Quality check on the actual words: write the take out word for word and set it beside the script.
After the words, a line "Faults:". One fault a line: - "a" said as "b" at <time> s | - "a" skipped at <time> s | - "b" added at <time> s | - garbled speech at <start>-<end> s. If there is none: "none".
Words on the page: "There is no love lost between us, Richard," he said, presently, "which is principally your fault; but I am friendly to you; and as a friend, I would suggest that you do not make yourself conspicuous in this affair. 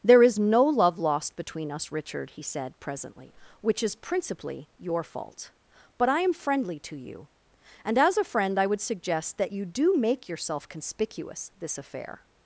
"There is no love lost between us, Richard," he said, presently, "which is principally your fault; but I am friendly to you; and as a friend, I would suggest that you do make yourself conspicuous this affair.
Faults:
- "not" skipped at 9.9 s
- "in" skipped at 11.5 s